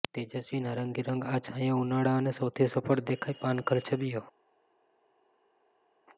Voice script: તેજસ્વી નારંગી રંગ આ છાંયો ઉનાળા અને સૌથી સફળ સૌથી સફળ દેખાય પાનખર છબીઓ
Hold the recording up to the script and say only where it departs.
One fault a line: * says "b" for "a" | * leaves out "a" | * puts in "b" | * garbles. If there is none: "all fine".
* leaves out "સૌથી સફળ"